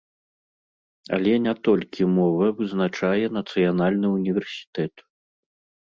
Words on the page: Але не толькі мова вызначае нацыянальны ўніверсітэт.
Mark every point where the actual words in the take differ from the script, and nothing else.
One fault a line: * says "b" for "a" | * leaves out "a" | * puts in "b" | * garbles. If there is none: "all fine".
all fine